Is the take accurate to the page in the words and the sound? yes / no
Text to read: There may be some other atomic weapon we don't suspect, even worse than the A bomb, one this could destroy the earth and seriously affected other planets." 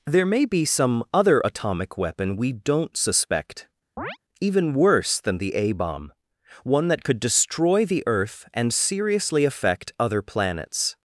no